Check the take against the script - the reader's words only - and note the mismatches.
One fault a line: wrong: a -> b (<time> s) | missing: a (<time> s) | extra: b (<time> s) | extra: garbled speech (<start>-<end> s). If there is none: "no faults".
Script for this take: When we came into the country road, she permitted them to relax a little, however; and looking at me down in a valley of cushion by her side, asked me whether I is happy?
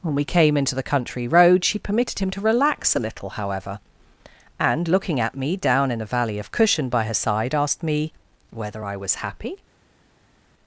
wrong: them -> him (2.2 s)
wrong: is -> was (9.0 s)